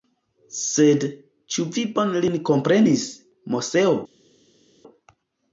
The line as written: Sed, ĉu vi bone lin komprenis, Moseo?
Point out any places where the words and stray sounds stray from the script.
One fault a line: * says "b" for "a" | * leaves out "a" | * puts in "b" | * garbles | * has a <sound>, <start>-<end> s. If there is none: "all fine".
all fine